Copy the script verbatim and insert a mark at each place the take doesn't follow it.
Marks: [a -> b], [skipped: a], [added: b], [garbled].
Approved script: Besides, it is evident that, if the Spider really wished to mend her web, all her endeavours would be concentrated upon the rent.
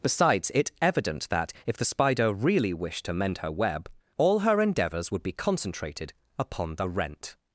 Besides, it [skipped: is] evident that, if the Spider really wished to mend her web, all her endeavours would be concentrated upon the rent.